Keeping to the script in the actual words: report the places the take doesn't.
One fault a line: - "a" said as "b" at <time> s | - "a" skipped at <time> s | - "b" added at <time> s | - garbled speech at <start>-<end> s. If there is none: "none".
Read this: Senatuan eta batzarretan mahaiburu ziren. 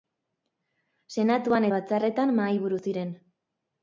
- "eta" skipped at 1.7 s